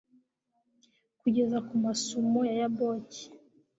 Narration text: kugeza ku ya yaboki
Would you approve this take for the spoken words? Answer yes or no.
no